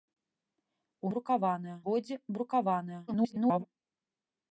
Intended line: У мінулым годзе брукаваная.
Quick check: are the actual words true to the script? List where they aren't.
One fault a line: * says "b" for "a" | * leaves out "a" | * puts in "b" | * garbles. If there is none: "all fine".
* says "брукаваная" for "мінулым"
* garbles